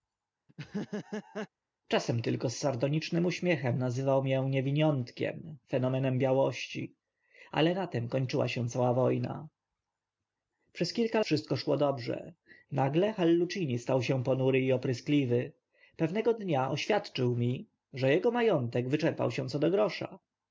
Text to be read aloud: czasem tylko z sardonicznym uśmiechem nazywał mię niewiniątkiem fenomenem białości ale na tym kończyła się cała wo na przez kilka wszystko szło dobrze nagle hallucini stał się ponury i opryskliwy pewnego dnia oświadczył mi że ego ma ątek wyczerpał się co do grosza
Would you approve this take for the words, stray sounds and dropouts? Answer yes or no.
no